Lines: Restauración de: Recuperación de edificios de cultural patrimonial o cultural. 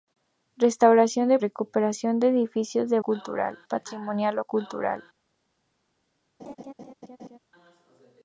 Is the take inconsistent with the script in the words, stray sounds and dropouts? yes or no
yes